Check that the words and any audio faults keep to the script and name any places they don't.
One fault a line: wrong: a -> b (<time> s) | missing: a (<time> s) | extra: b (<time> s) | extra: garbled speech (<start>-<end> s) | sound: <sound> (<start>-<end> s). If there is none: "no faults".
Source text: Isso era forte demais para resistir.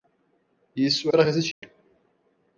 missing: era forte demais (1.1 s)
sound: dropout (1.5-1.6 s)